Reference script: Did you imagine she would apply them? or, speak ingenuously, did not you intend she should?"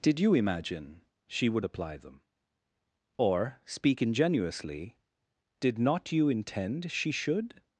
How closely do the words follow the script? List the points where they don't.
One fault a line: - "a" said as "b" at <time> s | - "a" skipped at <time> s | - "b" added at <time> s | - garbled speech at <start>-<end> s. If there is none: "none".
none